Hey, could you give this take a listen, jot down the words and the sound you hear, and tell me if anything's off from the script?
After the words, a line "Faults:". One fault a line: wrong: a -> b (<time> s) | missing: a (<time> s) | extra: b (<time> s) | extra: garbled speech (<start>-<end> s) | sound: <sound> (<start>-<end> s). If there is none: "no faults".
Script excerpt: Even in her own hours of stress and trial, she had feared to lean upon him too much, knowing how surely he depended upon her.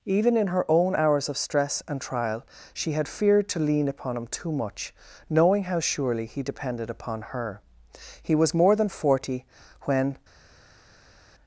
Even in her own hours of stress and trial, she had feared to lean upon him too much, knowing how surely he depended upon her. He was more than forty when
Faults:
extra: He was more than forty when (8.2 s)